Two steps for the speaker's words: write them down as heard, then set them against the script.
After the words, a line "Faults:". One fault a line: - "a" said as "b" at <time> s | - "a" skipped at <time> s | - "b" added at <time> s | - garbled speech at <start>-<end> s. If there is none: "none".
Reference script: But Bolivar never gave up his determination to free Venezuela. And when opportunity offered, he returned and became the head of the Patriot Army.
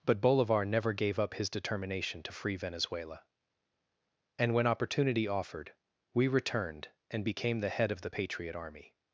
But Bolivar never gave up his determination to free Venezuela. And when opportunity offered, we returned and became the head of the Patriot Army.
Faults:
- "he" said as "we" at 6.1 s